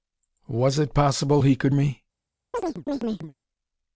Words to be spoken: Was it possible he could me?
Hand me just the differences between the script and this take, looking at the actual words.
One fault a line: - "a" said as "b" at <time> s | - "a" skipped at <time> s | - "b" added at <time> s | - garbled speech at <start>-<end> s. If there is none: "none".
none